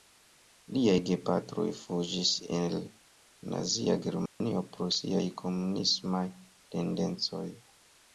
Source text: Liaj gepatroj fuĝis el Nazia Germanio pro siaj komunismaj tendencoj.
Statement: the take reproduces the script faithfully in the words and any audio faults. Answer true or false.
false